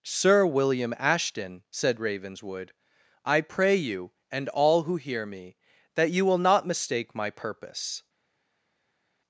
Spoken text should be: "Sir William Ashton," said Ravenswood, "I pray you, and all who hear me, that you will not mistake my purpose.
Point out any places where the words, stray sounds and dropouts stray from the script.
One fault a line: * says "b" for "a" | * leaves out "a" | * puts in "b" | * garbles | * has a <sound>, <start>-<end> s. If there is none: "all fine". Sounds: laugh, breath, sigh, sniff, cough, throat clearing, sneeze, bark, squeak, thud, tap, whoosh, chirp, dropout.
all fine